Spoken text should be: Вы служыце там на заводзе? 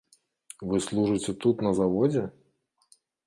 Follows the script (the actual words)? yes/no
no